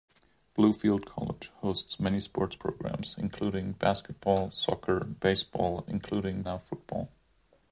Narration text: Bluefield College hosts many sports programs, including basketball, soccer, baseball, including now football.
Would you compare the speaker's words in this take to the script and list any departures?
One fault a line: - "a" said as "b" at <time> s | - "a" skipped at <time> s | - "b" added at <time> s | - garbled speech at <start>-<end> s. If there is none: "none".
none